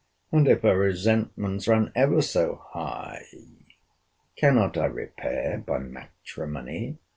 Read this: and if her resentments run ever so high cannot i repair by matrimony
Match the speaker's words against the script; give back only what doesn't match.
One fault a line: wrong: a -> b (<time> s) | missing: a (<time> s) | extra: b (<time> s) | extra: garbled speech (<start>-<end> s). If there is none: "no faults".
no faults